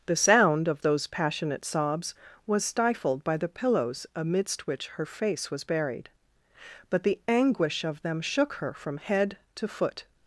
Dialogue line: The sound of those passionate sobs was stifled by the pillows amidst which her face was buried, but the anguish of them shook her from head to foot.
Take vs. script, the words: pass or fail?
pass